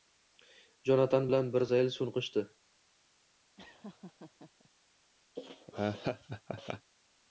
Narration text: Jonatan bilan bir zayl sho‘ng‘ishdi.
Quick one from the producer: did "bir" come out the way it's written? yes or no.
yes